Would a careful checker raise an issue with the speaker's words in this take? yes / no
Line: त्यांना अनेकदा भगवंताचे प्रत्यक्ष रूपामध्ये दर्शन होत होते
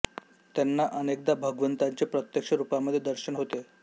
yes